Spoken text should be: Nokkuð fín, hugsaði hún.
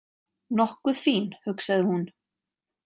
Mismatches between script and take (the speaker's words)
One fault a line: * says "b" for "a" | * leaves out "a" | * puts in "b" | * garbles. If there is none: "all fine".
all fine